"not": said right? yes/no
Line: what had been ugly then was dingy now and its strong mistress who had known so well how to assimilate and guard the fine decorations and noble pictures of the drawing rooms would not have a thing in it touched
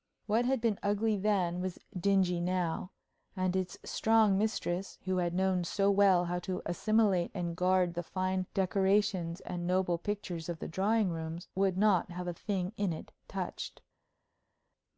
yes